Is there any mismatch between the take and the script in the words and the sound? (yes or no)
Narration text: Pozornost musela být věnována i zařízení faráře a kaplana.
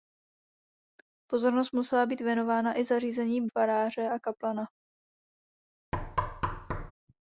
yes